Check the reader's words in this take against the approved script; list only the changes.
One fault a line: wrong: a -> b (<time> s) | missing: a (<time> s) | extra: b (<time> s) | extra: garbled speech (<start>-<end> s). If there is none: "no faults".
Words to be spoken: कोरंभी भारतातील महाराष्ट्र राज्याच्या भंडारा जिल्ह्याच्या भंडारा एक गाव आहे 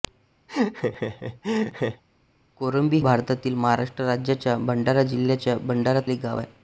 no faults